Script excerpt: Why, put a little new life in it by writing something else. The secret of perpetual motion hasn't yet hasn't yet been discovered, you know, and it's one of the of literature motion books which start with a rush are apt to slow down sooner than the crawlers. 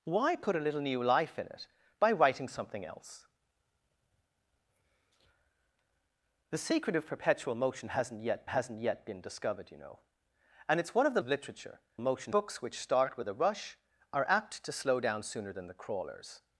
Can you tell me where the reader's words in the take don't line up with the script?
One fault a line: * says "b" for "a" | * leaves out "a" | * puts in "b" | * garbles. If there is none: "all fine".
all fine